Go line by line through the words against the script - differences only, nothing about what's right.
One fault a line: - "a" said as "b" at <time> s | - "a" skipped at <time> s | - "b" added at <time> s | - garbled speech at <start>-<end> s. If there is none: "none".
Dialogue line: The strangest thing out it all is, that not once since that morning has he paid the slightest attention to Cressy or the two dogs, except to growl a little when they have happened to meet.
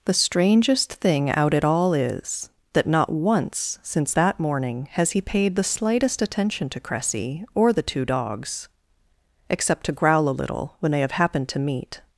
none